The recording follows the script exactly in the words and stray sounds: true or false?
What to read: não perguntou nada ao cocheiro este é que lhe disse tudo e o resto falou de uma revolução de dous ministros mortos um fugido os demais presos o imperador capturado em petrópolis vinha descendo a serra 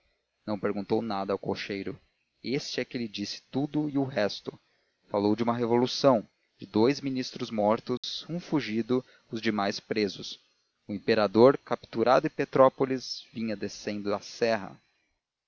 false